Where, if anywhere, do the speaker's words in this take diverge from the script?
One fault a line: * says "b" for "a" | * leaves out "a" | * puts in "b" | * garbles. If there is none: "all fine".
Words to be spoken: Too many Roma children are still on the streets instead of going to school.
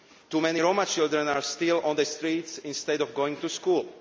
all fine